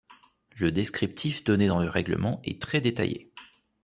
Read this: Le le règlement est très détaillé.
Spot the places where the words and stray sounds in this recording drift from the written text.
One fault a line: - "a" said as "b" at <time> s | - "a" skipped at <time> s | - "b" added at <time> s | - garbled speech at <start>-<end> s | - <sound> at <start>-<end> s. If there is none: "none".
- "descriptif donné dans" added at 0.7 s